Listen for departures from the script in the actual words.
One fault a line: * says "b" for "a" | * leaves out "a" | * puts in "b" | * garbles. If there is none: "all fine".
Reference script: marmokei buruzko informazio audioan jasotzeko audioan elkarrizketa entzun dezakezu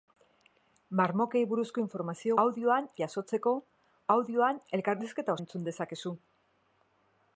all fine